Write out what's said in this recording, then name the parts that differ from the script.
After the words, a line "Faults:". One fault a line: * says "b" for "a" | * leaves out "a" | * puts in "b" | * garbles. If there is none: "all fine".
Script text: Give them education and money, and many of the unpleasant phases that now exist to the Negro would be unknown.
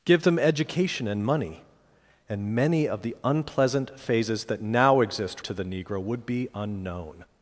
Give them education and money, and many of the unpleasant phases that now exist to the Negro would be unknown.
Faults:
all fine